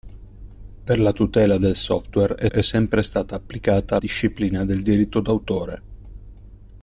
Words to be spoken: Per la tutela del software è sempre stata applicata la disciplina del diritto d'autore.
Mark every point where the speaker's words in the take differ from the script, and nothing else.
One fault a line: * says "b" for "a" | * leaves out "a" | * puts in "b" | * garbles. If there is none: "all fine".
* puts in "è"
* leaves out "la"